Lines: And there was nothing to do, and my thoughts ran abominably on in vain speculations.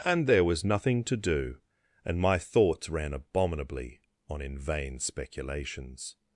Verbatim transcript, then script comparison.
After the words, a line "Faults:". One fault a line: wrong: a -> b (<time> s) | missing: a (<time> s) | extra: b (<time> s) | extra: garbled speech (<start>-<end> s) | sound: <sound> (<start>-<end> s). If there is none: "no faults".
And there was nothing to do, and my thoughts ran abominably on in vain speculations.
Faults:
no faults